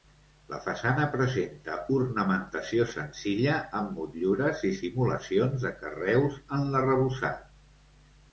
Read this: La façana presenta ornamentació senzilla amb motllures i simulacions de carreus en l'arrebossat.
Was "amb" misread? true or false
false